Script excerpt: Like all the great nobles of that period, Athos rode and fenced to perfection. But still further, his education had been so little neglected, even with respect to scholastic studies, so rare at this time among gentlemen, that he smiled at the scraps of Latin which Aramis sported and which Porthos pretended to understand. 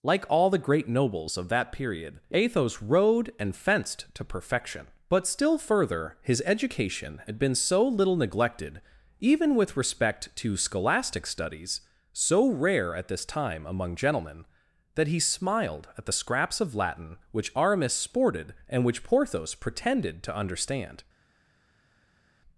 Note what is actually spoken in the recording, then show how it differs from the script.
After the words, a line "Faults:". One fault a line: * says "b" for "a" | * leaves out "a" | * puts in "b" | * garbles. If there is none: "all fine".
Like all the great nobles of that period, Athos rode and fenced to perfection. But still further, his education had been so little neglected, even with respect to scholastic studies, so rare at this time among gentlemen, that he smiled at the scraps of Latin which Aramis sported and which Porthos pretended to understand.
Faults:
all fine